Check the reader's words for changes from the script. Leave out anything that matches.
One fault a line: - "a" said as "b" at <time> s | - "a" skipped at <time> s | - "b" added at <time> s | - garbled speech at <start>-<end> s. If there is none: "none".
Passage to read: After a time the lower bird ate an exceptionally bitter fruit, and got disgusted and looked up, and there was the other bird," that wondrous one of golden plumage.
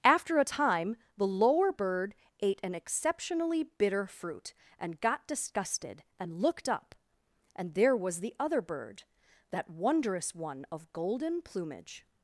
none